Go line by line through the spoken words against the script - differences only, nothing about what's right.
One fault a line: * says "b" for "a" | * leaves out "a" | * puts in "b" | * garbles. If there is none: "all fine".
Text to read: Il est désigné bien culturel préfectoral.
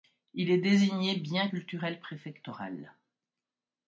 all fine